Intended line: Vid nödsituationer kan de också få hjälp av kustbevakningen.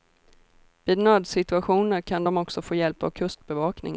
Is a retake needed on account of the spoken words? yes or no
no